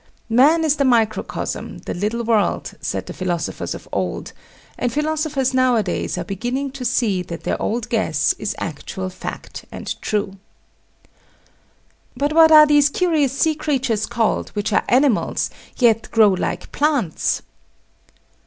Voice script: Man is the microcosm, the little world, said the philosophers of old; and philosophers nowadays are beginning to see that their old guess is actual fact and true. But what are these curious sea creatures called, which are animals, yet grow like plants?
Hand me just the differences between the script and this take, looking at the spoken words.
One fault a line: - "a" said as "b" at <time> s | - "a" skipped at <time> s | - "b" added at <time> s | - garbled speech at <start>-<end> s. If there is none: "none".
none